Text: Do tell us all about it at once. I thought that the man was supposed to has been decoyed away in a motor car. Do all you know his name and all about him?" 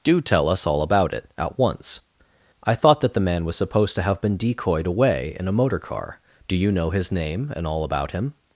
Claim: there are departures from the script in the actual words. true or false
true